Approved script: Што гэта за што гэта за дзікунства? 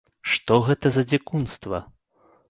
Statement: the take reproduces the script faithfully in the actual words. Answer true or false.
false